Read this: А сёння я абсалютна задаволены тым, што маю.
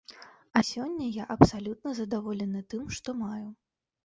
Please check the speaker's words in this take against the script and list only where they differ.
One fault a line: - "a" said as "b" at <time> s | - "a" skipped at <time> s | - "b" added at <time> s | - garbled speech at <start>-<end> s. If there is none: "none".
none